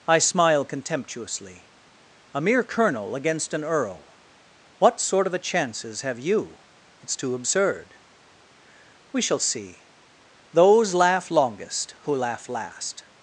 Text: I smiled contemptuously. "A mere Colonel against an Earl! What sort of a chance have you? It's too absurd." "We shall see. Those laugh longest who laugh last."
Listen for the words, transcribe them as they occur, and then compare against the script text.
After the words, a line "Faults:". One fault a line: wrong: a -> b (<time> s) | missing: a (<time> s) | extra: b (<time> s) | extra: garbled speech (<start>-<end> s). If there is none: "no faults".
I smile contemptuously. "A mere Colonel against an Earl! What sort of a chances have you? It's too absurd." "We shall see. Those laugh longest who laugh last."
Faults:
wrong: smiled -> smile (0.2 s)
wrong: chance -> chances (5.4 s)